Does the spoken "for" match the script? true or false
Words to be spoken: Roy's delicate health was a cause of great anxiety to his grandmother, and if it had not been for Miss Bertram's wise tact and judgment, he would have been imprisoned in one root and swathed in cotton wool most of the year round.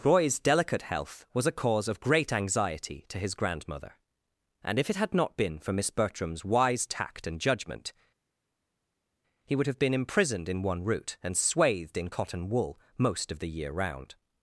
true